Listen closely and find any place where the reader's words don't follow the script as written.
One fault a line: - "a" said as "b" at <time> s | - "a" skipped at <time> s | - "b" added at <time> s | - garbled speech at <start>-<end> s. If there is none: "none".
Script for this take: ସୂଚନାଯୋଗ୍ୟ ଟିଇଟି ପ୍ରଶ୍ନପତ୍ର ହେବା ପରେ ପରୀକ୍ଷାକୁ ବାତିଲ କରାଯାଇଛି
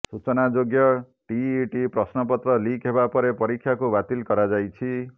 - "ଲିକ୍" added at 2.6 s